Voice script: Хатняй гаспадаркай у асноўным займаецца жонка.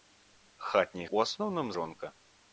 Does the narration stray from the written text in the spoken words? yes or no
yes